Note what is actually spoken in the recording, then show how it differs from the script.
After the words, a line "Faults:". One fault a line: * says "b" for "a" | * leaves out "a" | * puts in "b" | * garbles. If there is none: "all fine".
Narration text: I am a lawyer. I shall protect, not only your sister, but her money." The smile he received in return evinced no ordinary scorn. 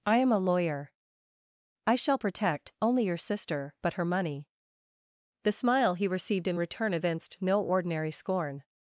I am a lawyer. I shall protect, only your sister, but her money." The smile he received in return evinced no ordinary scorn.
Faults:
* leaves out "not"